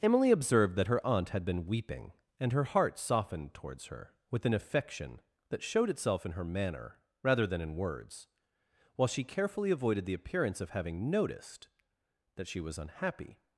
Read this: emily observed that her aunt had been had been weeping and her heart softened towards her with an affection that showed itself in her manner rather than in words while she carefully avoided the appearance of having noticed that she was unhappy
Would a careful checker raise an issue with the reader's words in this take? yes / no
yes